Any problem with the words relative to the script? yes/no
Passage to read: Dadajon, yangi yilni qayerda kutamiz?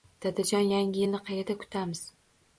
no